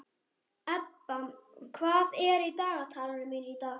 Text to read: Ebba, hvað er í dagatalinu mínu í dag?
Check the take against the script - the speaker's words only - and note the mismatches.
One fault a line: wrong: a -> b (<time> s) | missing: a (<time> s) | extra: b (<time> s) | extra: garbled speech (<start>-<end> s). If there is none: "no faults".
no faults